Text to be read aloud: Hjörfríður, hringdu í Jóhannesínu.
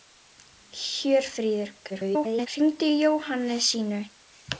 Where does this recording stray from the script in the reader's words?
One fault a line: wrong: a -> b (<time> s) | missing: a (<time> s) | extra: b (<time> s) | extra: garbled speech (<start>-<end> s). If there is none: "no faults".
extra: garbled speech (1.9-2.5 s)